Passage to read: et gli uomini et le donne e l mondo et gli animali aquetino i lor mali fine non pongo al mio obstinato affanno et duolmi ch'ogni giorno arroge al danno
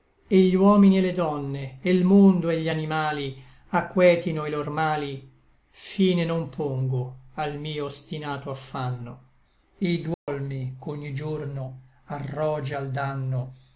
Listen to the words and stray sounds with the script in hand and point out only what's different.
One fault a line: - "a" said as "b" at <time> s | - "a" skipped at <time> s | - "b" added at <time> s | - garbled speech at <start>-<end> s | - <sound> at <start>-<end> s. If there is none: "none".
- dropout at 10.1-10.3 s